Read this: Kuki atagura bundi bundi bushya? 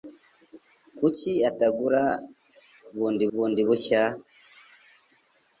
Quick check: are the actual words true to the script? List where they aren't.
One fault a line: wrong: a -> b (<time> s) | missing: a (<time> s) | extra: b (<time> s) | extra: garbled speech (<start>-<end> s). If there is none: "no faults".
no faults